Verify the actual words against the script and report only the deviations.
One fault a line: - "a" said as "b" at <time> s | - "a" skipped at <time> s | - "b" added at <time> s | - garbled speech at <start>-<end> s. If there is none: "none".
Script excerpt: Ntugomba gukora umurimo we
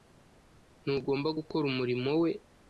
none